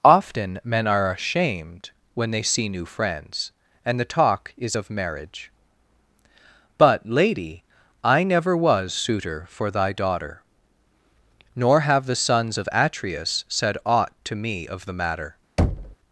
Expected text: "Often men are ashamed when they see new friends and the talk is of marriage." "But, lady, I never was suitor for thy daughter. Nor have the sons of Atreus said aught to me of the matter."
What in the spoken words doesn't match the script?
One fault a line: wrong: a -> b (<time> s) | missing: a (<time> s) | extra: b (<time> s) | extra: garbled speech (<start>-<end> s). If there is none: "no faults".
no faults